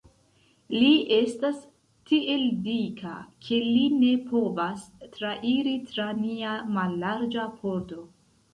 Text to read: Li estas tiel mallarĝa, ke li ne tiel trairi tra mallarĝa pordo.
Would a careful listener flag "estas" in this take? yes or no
no